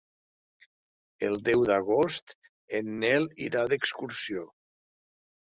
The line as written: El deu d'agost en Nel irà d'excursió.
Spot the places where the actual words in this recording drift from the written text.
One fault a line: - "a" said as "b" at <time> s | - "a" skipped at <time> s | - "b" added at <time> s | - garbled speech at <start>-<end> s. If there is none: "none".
none